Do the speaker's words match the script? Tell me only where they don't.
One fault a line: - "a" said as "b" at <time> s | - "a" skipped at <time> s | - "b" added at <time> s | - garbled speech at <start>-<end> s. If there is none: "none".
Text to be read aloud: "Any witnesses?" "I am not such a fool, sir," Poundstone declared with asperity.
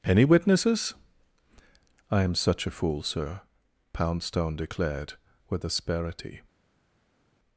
- "not" skipped at 2.4 s